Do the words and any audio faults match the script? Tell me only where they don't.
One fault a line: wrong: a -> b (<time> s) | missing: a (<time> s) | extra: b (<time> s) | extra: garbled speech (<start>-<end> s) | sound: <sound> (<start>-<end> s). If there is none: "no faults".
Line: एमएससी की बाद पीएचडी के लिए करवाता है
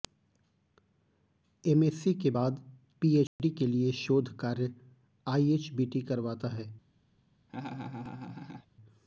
wrong: की -> के (2.1 s)
sound: dropout (3.3-3.4 s)
extra: शोध कार्य आईएचबीटी (3.9 s)
sound: laugh (7.5-8.7 s)